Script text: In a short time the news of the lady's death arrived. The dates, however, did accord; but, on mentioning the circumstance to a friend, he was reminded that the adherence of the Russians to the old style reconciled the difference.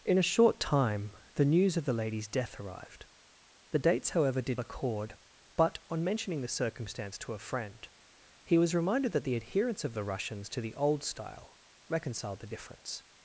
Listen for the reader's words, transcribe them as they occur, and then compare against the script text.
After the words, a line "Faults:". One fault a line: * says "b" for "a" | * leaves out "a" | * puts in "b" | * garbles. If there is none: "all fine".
In a short time the news of the lady's death arrived. The dates, however, did accord; but, on mentioning the circumstance to a friend, he was reminded that the adherence of the Russians to the old style reconciled the difference.
Faults:
all fine